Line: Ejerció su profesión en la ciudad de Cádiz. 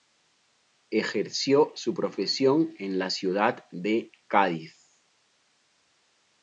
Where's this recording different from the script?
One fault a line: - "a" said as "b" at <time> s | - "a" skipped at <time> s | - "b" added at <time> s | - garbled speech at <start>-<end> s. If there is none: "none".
none